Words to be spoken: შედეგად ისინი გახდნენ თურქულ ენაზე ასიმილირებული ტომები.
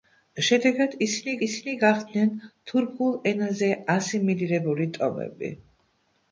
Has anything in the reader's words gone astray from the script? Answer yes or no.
yes